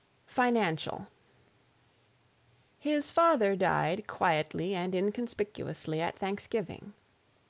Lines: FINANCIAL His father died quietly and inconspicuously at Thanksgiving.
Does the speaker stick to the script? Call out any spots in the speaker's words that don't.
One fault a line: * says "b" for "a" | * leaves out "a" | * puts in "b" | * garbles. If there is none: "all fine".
all fine